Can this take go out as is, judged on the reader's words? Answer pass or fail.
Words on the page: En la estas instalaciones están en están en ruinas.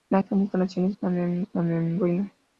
pass